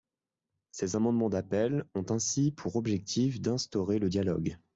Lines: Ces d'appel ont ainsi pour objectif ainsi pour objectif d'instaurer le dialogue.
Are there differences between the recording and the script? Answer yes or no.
yes